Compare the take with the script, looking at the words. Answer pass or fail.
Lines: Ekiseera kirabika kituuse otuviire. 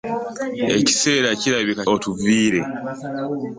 fail